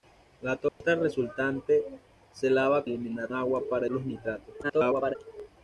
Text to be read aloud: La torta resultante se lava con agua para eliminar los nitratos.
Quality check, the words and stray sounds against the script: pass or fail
fail